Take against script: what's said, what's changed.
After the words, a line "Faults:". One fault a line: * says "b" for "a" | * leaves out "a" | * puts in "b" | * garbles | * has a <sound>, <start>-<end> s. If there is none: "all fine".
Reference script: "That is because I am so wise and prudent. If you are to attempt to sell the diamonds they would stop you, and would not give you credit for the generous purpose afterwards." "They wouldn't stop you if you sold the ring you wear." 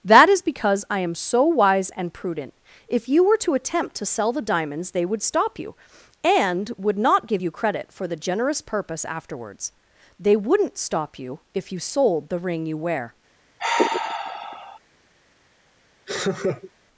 "That is because I am so wise and prudent. If you were to attempt to sell the diamonds they would stop you, and would not give you credit for the generous purpose afterwards." "They wouldn't stop you if you sold the ring you wear."
Faults:
* says "were" for "are"
* has a sigh, 13.6-14.8 s
* has a laugh, 16.1-16.7 s